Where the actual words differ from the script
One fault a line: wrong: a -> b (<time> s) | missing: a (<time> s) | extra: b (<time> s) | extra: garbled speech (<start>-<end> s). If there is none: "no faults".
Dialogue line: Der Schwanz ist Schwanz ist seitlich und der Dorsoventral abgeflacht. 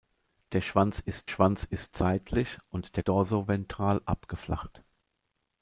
no faults